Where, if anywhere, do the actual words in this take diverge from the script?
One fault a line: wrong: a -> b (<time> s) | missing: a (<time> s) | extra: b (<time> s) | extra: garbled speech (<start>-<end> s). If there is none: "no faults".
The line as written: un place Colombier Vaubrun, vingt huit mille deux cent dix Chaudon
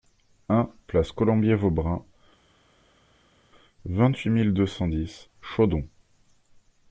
no faults